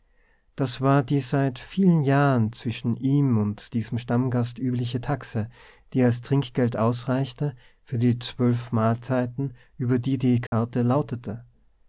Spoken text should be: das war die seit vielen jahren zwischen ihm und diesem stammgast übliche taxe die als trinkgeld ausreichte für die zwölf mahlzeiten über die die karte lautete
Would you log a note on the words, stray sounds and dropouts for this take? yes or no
yes